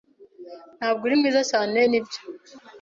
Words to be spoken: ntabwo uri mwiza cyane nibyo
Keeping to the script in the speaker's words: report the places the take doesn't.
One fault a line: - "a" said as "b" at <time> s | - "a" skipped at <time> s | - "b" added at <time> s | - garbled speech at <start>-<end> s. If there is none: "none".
none